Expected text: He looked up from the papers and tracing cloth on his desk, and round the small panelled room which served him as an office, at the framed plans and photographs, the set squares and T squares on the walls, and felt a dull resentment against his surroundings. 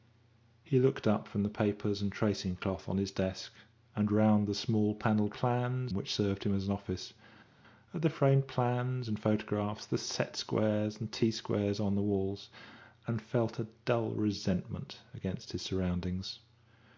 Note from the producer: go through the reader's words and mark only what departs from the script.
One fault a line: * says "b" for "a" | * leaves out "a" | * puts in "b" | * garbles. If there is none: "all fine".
* says "plans" for "room"